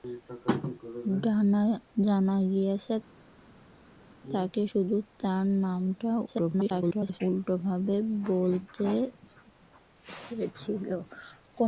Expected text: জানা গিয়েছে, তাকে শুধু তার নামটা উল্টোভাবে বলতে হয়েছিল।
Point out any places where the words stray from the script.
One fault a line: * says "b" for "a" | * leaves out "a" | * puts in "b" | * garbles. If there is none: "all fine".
* garbles